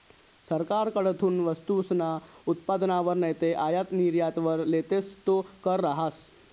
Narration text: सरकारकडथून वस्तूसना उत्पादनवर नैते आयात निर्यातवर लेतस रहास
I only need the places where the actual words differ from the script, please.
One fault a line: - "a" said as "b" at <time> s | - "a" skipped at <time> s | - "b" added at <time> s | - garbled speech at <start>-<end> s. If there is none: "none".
- "तो कर" added at 5.3 s